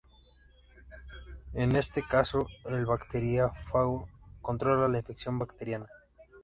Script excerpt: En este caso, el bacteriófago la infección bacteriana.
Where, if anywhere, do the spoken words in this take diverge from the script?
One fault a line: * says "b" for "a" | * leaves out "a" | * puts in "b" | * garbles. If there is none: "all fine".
* puts in "controla"